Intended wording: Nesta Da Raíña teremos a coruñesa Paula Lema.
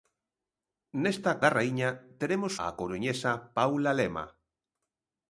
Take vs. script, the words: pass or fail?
pass